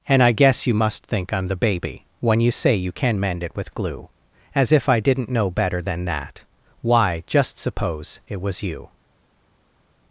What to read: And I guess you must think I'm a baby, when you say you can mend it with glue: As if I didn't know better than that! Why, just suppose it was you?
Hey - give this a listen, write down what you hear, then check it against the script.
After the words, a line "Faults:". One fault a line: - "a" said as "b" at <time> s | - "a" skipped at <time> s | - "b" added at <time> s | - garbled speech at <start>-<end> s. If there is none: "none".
And I guess you must think I'm the baby, when you say you can mend it with glue: As if I didn't know better than that! Why, just suppose it was you?
Faults:
- "a" said as "the" at 1.5 s